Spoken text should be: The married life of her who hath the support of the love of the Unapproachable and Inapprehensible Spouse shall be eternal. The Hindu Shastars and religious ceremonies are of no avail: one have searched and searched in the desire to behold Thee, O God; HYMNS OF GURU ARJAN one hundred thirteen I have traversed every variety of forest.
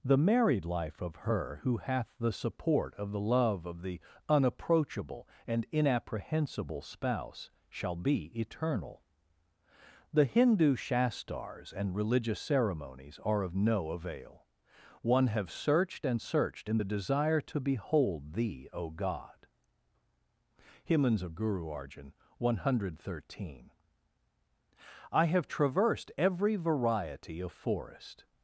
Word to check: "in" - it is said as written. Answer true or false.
true